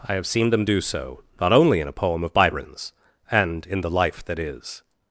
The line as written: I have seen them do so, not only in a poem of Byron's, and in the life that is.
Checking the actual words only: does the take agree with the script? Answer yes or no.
yes